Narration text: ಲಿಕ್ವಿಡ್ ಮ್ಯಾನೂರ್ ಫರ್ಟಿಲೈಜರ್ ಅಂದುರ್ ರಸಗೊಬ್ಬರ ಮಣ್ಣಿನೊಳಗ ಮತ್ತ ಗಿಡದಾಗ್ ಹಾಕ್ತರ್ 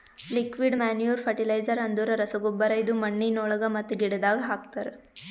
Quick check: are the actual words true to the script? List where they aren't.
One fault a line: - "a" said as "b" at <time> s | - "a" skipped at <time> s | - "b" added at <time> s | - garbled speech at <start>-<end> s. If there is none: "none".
- "ಇದು" added at 2.8 s